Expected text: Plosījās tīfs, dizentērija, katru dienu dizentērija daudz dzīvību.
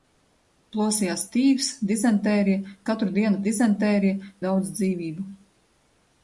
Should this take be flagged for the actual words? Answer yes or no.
no